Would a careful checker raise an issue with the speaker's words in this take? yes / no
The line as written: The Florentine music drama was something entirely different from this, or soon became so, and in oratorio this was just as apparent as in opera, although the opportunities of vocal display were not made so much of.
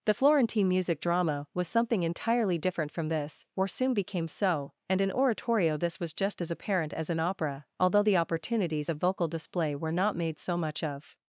no